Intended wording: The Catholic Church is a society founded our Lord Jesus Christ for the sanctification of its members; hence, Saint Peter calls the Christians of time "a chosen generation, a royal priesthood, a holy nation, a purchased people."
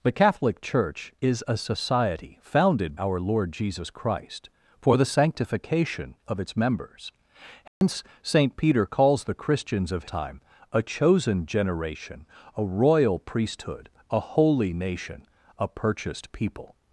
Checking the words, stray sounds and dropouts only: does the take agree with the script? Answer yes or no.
no